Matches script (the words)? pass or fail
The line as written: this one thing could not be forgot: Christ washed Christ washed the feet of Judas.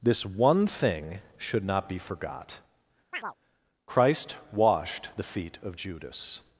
fail